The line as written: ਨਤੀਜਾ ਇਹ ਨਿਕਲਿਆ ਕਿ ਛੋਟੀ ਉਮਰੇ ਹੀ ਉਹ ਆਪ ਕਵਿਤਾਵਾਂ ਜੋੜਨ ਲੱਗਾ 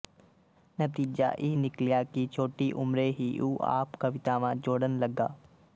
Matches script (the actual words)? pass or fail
pass